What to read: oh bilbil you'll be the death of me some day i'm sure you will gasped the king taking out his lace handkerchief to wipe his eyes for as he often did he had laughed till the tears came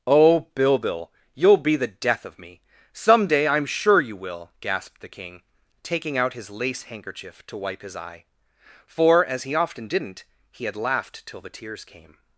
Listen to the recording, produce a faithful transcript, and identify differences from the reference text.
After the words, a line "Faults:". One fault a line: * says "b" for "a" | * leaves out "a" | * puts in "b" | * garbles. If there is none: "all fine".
oh bilbil you'll be the death of me some day i'm sure you will gasped the king taking out his lace handkerchief to wipe his eye for as he often didn't he had laughed till the tears came
Faults:
* says "eye" for "eyes"
* says "didn't" for "did"